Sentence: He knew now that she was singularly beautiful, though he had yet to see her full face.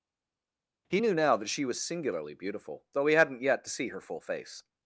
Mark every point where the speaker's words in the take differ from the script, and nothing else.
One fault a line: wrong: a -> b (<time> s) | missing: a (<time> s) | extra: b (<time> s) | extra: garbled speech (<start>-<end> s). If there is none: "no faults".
wrong: had -> hadn't (3.1 s)